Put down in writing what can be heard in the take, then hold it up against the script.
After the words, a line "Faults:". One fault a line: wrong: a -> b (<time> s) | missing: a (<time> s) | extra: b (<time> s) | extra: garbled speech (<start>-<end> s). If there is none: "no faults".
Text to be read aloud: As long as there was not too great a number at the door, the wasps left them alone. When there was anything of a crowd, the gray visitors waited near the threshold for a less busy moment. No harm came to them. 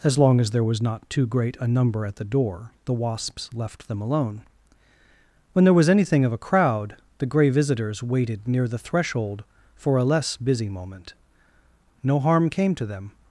As long as there was not too great a number at the door, the wasps left them alone. When there was anything of a crowd, the gray visitors waited near the threshold for a less busy moment. No harm came to them.
Faults:
no faults